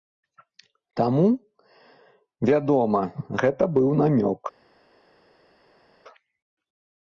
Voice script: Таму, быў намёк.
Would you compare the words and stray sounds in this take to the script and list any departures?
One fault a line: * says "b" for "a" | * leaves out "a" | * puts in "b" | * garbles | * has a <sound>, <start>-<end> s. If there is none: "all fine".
* puts in "вядома гэта"